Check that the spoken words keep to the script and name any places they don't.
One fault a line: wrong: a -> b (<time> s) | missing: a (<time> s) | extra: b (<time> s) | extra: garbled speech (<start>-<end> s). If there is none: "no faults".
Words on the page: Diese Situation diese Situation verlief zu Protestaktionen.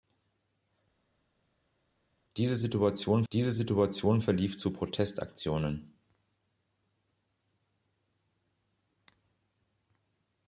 no faults